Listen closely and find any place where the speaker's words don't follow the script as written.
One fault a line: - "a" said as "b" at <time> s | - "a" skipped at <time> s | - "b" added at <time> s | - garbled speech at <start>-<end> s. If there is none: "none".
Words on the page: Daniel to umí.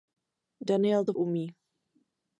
none